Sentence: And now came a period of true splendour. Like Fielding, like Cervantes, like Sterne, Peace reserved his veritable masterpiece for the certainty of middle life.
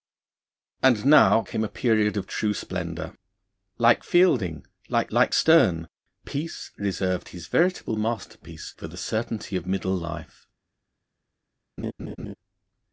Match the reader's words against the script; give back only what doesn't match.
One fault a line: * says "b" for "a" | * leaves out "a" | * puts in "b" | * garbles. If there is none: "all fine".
* leaves out "Cervantes"